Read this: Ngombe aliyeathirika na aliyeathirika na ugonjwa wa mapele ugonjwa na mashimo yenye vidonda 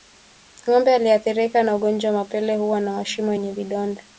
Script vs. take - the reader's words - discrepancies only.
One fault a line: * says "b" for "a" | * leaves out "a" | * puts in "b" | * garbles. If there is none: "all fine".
* leaves out "aliyeathirika na"
* says "huwa" for "ugonjwa"